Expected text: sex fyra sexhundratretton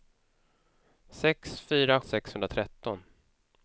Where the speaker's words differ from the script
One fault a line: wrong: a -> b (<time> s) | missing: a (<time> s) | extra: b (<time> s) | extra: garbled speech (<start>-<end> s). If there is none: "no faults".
no faults